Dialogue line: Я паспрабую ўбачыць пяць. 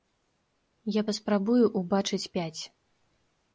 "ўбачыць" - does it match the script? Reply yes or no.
yes